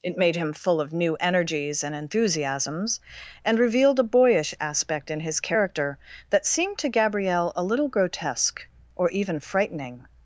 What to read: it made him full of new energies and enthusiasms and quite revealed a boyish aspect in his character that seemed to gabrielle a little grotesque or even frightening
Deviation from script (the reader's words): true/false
true